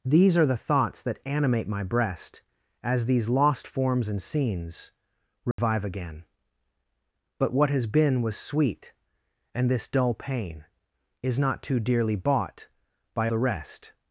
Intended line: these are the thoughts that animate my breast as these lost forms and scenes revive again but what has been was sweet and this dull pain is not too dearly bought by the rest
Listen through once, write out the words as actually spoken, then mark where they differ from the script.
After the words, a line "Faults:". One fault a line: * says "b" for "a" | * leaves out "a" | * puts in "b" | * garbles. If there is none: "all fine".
these are the thoughts that animate my breast as these lost forms and scenes revive again but what has been was sweet and this dull pain is not too dearly bought by the rest
Faults:
all fine